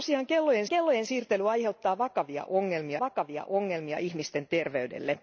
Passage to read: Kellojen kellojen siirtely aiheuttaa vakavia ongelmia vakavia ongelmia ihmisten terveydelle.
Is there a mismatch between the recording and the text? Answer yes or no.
no